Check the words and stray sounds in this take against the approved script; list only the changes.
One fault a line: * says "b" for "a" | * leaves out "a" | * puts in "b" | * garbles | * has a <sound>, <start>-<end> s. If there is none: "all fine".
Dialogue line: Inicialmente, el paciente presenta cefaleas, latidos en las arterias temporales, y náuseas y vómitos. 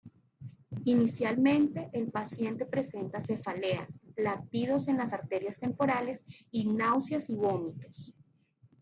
all fine